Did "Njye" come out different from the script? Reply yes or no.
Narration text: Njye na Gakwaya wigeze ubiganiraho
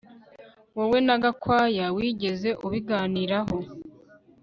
yes